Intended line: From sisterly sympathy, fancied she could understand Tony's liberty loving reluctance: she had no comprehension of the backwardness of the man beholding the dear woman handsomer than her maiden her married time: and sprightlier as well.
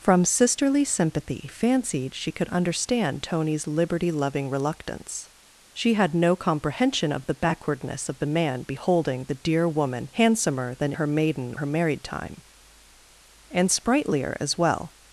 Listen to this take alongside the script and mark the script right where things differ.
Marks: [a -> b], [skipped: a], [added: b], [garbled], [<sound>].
From sisterly sympathy, fancied she could understand Tony's liberty loving reluctance: she had no comprehension of the backwardness of the man beholding the dear woman handsomer than her maiden her married time: and sprightlier as well.